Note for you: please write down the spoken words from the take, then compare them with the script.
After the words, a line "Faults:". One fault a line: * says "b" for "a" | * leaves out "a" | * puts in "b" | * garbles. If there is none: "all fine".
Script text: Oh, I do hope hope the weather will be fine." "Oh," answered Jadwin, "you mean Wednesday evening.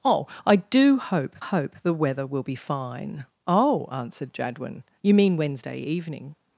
Oh, I do hope hope the weather will be fine." "Oh," answered Jadwin, "you mean Wednesday evening.
Faults:
all fine